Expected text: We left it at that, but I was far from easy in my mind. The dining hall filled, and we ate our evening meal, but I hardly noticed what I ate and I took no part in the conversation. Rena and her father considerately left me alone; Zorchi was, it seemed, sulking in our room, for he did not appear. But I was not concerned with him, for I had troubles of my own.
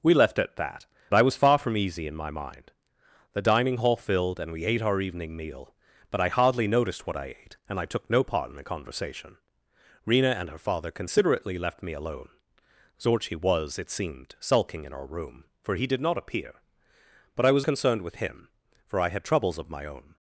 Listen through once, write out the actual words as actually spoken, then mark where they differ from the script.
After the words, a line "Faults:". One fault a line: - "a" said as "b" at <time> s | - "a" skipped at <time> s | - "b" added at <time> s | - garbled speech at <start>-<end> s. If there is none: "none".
We left it at that, I was far from easy in my mind. The dining hall filled, and we ate our evening meal, but I hardly noticed what I ate and I took no part in the conversation. Rena and her father considerately left me alone; Zorchi was, it seemed, sulking in our room, for he did not appear. But I was concerned with him, for I had troubles of my own.
Faults:
- "but" skipped at 0.8 s
- "not" skipped at 17.6 s